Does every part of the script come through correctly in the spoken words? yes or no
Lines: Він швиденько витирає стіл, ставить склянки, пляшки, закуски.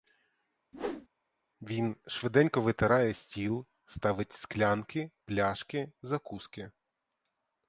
yes